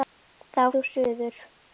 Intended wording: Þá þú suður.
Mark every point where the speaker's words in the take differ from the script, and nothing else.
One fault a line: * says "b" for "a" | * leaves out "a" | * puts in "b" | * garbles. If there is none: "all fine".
all fine